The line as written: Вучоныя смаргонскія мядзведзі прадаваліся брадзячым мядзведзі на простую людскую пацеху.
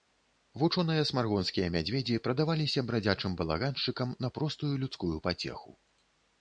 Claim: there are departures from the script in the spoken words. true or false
true